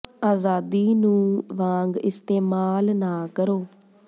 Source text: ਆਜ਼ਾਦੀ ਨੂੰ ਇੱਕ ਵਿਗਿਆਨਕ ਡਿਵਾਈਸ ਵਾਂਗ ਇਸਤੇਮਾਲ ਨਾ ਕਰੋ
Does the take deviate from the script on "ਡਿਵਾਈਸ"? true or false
true